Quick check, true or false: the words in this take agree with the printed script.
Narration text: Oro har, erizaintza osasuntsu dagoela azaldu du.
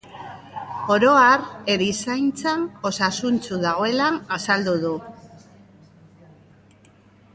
true